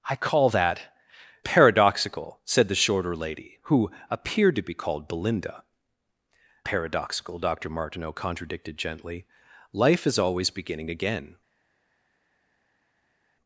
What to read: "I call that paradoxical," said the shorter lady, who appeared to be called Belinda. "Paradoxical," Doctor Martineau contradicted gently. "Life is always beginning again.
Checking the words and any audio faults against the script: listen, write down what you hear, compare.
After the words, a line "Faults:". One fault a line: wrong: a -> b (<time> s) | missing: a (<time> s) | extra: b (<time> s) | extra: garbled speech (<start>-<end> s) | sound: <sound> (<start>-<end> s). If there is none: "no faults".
"I call that paradoxical," said the shorter lady, who appeared to be called Belinda. "Paradoxical," Doctor Martineau contradicted gently. "Life is always beginning again.
Faults:
no faults